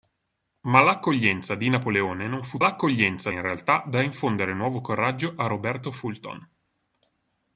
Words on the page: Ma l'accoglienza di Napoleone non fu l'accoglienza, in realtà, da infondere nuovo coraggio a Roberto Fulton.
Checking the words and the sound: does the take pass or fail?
pass